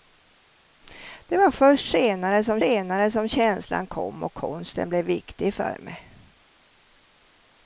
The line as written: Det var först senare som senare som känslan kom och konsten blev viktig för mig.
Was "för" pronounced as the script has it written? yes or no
yes